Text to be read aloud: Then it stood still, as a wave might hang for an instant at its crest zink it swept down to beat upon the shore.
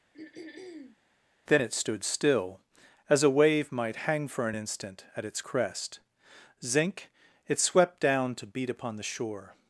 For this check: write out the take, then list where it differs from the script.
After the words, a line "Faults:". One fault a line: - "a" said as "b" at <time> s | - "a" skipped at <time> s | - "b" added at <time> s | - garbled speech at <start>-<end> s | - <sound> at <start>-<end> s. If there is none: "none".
Then it stood still, as a wave might hang for an instant at its crest zink it swept down to beat upon the shore.
Faults:
- throat clearing at 0.1-1.0 s